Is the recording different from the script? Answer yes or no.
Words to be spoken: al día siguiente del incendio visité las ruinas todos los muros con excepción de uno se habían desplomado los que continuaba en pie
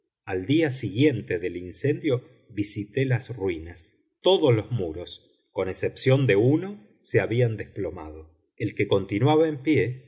yes